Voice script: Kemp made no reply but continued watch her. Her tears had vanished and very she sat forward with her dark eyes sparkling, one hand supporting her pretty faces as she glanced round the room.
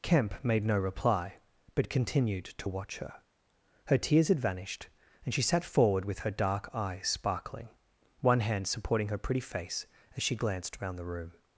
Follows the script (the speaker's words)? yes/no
no